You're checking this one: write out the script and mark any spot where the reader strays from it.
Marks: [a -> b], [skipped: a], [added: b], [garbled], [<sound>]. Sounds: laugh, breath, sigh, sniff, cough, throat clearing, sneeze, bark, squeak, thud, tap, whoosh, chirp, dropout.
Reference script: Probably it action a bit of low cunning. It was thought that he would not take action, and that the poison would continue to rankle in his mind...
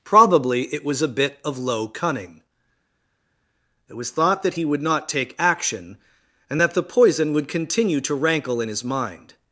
Probably it [action -> was] a bit of low cunning. It was thought that he would not take action, and that the poison would continue to rankle in his mind...